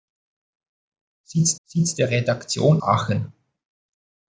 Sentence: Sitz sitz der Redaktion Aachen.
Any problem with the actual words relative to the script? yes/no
no